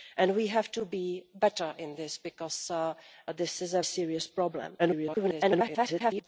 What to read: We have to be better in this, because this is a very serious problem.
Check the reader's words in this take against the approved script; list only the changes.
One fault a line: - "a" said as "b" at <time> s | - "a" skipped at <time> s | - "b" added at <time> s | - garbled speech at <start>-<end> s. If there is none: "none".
- "very" skipped at 3.8 s
- garbled speech at 4.8-6.2 s